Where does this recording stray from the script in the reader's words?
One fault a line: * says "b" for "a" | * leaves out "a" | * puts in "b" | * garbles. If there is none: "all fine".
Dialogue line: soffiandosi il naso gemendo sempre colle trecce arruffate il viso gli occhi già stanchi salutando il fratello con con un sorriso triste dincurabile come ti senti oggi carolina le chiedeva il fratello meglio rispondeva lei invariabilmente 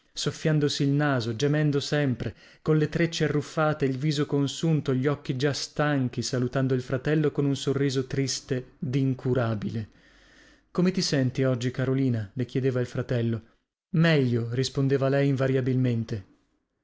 * puts in "consunto"
* leaves out "con"